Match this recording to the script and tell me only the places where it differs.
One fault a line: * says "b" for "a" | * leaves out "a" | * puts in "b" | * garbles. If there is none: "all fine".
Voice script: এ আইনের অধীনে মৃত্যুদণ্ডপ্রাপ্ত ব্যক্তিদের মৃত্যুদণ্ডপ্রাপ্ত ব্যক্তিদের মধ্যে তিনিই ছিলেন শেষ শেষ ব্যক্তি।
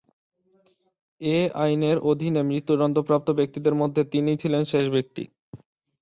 * leaves out "মৃত্যুদণ্ডপ্রাপ্ত ব্যক্তিদের"
* leaves out "শেষ"